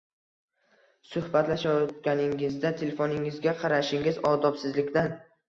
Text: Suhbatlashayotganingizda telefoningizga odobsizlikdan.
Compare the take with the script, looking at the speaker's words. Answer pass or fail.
fail